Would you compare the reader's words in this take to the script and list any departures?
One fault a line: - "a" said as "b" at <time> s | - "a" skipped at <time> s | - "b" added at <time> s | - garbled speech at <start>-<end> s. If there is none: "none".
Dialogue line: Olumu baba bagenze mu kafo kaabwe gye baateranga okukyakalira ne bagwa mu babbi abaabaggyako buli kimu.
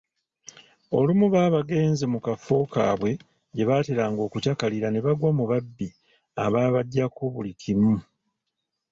none